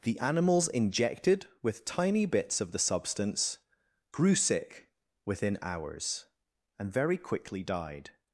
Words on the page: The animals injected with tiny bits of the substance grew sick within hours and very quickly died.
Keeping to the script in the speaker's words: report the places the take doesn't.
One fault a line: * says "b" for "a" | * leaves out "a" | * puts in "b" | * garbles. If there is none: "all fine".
all fine